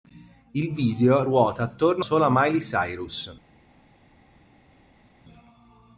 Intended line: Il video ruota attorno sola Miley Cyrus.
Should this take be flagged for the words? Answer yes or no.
no